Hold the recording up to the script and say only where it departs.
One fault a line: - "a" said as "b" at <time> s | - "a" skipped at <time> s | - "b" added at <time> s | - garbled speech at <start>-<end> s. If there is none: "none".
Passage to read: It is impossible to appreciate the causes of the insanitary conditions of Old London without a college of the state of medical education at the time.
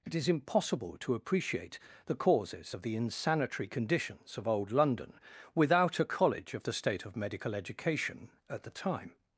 none